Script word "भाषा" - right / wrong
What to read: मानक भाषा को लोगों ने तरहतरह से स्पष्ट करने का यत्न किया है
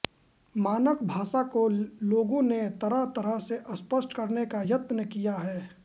right